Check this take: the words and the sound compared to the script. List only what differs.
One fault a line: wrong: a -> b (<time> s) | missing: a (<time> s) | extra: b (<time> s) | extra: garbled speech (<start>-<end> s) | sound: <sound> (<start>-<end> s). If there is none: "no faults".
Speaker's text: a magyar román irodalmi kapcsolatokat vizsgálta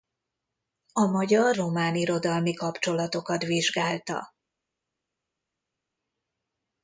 no faults